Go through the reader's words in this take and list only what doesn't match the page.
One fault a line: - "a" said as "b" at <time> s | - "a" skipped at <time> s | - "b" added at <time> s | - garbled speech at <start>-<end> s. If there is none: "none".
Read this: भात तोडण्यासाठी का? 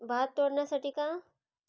none